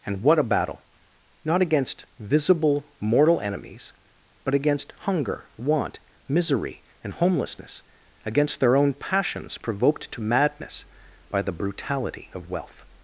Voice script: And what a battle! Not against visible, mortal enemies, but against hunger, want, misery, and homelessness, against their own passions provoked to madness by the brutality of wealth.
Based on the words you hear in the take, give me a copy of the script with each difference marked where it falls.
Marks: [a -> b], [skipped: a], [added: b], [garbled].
And what a battle! Not against visible, mortal enemies, but against hunger, want, misery, and homelessness, against their own passions provoked to madness by the brutality of wealth.